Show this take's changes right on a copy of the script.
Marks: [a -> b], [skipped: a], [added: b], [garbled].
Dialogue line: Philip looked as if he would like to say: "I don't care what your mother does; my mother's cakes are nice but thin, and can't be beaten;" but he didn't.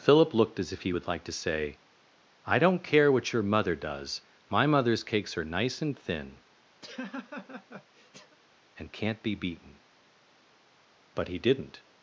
Philip looked as if he would like to say: "I don't care what your mother does; my mother's cakes are nice [but -> and] thin, and can't be beaten;" but he didn't.